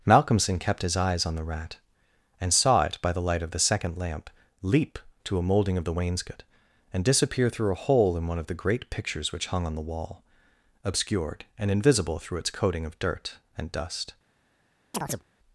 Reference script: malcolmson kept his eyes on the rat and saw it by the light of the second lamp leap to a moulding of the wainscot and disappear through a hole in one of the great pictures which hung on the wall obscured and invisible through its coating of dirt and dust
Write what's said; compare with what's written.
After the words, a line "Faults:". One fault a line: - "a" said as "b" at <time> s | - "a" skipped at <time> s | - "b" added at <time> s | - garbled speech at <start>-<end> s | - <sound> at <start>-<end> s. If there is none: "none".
malcolmson kept his eyes on the rat and saw it by the light of the second lamp leap to a moulding of the wainscot and disappear through a hole in one of the great pictures which hung on the wall obscured and invisible through its coating of dirt and dust
Faults:
- chirp at 14.9-15.2 s